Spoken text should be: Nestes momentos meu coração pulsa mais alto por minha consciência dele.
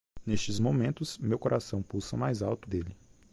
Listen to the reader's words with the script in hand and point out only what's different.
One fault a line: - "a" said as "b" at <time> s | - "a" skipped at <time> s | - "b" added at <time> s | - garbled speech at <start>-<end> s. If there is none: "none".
- "por minha consciência" skipped at 2.7 s